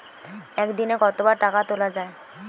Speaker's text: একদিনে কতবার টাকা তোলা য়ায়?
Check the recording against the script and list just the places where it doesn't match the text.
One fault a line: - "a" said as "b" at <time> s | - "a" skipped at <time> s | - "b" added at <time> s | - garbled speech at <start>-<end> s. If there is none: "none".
none